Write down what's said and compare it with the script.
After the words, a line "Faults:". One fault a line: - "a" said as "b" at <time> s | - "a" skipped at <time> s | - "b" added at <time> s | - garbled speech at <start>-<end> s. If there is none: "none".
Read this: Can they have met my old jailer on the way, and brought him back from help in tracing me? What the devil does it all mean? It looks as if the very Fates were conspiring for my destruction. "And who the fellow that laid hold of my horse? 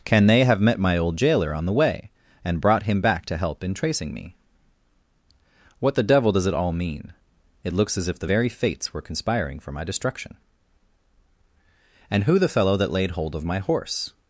Can they have met my old jailer on the way, and brought him back to help in tracing me? What the devil does it all mean? It looks as if the very Fates were conspiring for my destruction. "And who the fellow that laid hold of my horse?
Faults:
- "from" said as "to" at 3.2 s